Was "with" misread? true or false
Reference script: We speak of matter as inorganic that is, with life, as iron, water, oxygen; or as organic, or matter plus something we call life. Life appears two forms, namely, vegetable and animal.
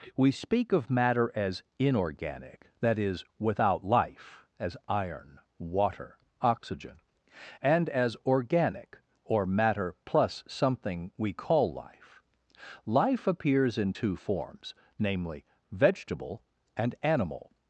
true